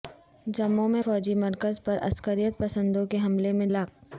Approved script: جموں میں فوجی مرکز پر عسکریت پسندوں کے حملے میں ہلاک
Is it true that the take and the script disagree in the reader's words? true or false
false